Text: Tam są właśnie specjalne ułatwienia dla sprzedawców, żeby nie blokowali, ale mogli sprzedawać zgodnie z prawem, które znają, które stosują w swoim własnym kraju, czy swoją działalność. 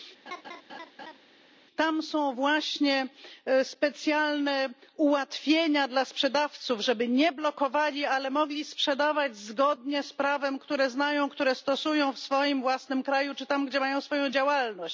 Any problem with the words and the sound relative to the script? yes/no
yes